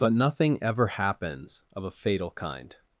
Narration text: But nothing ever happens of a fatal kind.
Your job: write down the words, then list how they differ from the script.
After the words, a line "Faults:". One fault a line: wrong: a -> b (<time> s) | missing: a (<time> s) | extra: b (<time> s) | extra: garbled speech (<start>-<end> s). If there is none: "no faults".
But nothing ever happens of a fatal kind.
Faults:
no faults